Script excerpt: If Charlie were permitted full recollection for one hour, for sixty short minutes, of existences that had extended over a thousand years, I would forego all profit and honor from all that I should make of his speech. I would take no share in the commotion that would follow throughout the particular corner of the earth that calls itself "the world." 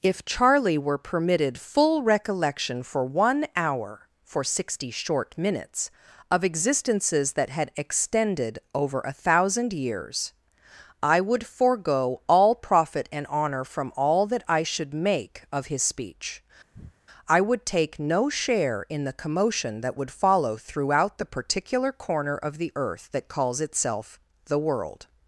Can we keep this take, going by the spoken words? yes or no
yes